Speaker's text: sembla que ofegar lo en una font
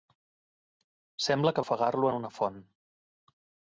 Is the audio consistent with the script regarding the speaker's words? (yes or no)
yes